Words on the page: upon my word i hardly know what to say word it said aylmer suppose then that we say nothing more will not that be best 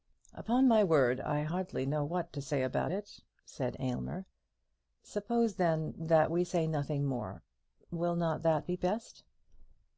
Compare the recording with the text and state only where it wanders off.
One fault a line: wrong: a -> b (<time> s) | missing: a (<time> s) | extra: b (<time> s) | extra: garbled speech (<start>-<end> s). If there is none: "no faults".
wrong: word -> about (2.6 s)